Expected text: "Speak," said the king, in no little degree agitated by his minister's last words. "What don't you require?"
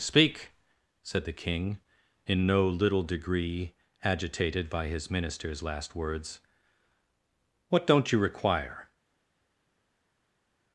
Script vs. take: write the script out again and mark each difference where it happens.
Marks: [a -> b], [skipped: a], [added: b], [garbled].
"Speak," said the king, in no little degree agitated by his minister's last words. "What don't you require?"